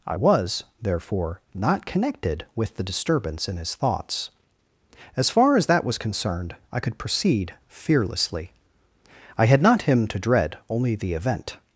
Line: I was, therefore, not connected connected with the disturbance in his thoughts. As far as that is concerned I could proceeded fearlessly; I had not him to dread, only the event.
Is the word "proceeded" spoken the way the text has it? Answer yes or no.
no